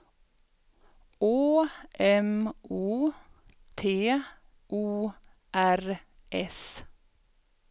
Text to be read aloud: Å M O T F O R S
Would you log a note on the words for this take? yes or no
yes